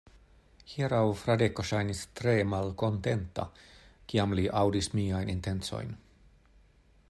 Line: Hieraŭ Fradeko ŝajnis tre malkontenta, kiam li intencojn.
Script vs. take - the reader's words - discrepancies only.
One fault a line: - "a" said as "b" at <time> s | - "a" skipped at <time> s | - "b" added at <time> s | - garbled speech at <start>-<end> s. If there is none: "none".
- "aŭdis miajn" added at 4.6 s